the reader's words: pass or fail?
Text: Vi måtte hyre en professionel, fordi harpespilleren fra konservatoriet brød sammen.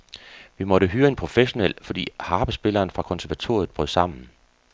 pass